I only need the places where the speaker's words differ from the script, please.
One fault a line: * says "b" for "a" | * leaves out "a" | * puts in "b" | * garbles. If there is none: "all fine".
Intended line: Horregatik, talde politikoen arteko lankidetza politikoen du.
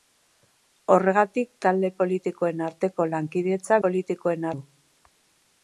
all fine